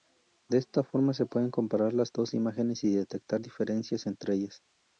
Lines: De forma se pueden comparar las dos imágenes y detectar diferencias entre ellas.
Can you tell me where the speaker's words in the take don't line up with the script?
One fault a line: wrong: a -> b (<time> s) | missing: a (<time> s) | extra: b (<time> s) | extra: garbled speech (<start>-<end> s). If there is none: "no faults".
extra: esta (0.6 s)